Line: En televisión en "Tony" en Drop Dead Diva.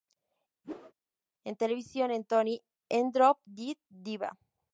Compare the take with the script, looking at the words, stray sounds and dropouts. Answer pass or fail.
fail